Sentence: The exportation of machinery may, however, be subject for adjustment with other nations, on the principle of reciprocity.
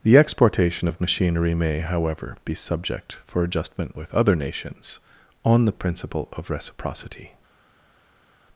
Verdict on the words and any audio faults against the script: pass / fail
pass